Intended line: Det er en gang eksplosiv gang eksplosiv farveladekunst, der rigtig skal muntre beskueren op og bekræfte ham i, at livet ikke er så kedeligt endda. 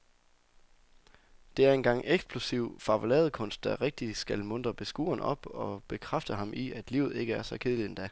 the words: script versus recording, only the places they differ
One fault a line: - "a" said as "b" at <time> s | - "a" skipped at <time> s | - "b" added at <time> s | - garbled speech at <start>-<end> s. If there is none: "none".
- "gang eksplosiv" skipped at 2.8 s